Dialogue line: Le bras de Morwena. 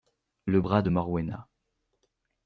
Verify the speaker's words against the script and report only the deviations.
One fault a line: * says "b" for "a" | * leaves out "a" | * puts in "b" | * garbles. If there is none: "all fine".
all fine